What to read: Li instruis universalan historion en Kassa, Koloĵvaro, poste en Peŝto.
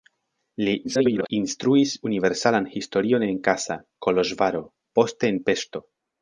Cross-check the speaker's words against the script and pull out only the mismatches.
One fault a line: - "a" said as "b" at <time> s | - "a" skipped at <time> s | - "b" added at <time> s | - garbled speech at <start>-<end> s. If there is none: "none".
- garbled speech at 0.8-1.3 s